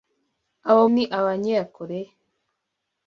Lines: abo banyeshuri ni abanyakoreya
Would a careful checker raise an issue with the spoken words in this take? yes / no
yes